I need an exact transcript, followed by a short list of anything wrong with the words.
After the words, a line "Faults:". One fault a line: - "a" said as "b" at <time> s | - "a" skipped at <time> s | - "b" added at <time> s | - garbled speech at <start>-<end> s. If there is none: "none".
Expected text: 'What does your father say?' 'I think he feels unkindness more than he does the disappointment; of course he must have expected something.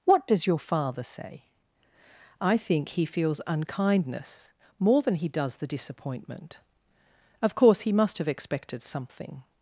'What does your father say?' 'I think he feels unkindness more than he does the disappointment; of course he must have expected something.
Faults:
none